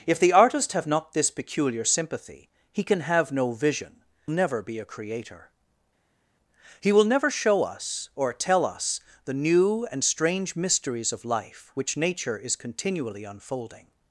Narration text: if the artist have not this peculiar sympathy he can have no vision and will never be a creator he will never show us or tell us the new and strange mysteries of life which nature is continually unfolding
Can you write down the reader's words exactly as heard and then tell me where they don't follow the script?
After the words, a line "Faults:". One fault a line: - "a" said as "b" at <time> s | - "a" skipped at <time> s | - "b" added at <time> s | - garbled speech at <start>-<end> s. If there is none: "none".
if the artist have not this peculiar sympathy he can have no vision never be a creator he will never show us or tell us the new and strange mysteries of life which nature is continually unfolding
Faults:
- "and will" skipped at 4.0 s